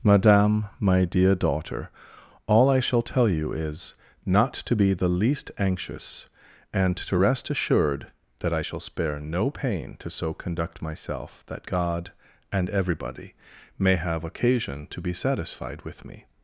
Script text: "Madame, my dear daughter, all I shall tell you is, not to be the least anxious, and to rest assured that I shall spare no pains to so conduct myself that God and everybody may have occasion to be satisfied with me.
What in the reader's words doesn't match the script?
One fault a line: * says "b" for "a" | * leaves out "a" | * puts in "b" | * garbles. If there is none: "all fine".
* says "pain" for "pains"